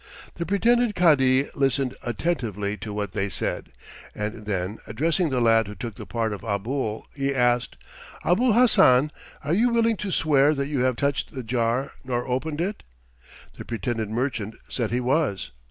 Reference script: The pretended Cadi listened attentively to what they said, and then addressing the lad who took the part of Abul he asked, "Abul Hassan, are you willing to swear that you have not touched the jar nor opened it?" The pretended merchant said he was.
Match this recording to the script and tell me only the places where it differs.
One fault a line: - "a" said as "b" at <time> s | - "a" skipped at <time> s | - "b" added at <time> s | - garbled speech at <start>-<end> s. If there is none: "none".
- "not" skipped at 11.0 s